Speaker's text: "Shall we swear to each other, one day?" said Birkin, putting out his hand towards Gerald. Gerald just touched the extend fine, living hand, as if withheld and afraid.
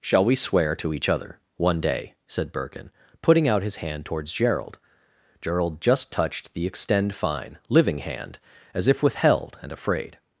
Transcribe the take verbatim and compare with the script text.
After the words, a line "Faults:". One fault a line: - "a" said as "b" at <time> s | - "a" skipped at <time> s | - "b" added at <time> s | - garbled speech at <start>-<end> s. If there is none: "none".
"Shall we swear to each other, one day?" said Birkin, putting out his hand towards Gerald. Gerald just touched the extend fine, living hand, as if withheld and afraid.
Faults:
none